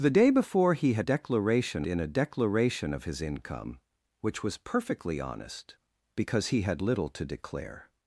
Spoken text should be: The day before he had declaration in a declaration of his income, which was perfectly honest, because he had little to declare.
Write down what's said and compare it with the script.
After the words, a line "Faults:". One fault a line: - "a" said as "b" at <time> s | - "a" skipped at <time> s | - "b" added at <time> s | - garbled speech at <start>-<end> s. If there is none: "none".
The day before he had declaration in a declaration of his income, which was perfectly honest, because he had little to declare.
Faults:
none